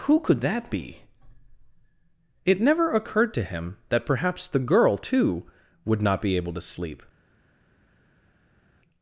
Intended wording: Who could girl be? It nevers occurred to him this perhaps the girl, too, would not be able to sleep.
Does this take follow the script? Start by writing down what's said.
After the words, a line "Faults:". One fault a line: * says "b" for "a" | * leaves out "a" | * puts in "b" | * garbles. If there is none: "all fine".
Who could that be? It never occurred to him that perhaps the girl, too, would not be able to sleep.
Faults:
* says "that" for "girl"
* says "never" for "nevers"
* says "that" for "this"